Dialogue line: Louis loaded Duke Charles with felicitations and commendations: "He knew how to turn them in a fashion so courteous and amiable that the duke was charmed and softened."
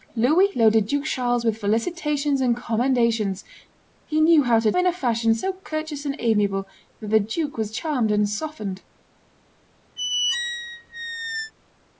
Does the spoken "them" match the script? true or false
false